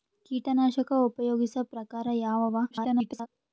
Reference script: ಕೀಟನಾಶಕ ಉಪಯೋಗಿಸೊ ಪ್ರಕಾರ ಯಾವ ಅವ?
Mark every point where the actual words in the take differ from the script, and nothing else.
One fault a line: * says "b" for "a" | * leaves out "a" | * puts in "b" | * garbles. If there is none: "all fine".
* garbles